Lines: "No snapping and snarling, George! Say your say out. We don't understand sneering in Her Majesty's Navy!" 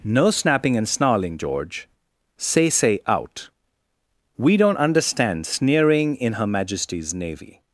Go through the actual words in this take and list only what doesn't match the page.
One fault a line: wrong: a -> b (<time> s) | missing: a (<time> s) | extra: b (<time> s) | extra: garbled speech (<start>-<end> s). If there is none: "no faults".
missing: your (2.7 s)